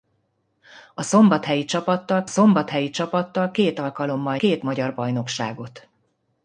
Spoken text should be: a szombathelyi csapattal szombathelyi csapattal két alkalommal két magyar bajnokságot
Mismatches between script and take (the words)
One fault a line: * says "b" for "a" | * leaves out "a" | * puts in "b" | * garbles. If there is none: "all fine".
all fine